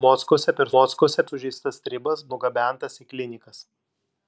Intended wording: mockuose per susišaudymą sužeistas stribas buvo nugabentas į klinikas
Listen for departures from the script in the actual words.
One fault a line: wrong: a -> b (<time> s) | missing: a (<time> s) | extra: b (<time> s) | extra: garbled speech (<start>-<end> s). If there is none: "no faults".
wrong: susišaudymą -> mockuose (0.7 s)
missing: buvo (2.2 s)